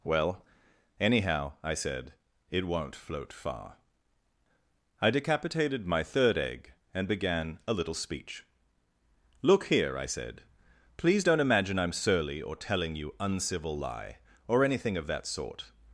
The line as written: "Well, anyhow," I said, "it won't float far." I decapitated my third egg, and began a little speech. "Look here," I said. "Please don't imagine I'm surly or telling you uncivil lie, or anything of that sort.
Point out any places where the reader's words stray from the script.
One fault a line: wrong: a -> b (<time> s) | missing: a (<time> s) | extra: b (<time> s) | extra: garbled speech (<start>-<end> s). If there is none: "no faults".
no faults